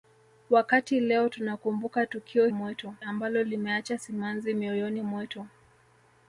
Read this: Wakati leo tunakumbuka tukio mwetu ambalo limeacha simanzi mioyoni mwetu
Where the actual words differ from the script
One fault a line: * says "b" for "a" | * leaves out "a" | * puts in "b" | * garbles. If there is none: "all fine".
all fine